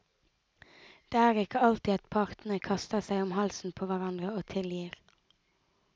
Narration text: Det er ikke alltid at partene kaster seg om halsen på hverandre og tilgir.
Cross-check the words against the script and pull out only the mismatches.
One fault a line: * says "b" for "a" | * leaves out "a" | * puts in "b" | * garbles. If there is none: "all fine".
all fine